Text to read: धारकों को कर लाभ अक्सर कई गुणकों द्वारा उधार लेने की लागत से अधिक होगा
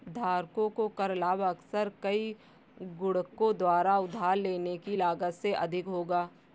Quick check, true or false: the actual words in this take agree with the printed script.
true